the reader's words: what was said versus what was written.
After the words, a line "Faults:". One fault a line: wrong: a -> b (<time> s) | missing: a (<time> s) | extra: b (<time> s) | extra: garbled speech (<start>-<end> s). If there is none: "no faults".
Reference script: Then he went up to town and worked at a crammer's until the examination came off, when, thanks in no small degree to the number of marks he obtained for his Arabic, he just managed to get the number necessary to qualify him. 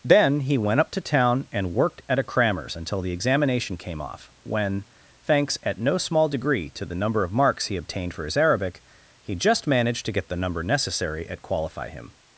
Then he went up to town and worked at a crammer's until the examination came off, when, thanks at no small degree to the number of marks he obtained for his Arabic, he just managed to get the number necessary at qualify him.
Faults:
wrong: in -> at (5.6 s)
wrong: to -> at (11.3 s)